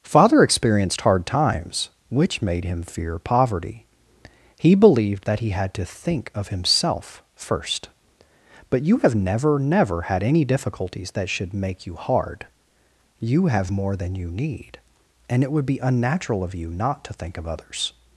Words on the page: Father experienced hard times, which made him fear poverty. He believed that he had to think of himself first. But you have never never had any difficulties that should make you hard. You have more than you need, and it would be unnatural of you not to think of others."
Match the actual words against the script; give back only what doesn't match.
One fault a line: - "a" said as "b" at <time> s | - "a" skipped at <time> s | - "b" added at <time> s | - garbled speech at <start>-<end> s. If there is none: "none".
none